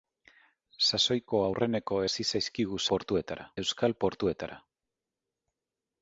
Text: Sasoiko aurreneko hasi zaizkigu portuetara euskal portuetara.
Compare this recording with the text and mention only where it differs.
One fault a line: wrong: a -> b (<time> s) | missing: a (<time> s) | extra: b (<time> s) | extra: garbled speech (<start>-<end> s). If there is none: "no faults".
no faults